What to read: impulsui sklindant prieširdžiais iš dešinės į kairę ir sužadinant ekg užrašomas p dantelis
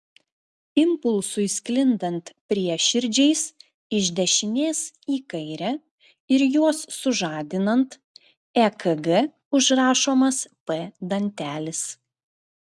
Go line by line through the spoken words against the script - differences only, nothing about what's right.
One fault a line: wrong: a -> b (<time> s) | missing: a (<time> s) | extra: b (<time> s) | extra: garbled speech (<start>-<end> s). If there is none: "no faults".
extra: juos (6.6 s)